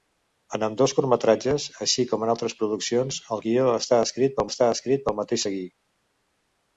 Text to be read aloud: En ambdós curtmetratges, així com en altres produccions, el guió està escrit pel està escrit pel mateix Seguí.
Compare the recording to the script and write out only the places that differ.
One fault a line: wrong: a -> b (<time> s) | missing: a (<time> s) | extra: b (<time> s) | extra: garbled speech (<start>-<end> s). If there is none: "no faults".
no faults